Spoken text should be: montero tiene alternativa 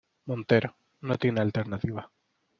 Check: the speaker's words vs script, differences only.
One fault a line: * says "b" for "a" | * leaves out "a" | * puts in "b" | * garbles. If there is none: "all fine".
* puts in "no"